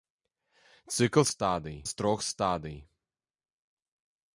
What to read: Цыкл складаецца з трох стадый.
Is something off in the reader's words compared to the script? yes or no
yes